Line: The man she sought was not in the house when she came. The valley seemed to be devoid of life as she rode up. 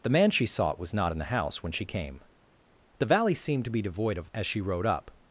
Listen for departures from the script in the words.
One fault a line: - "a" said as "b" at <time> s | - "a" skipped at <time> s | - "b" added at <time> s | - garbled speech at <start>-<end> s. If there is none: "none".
- "life" skipped at 4.3 s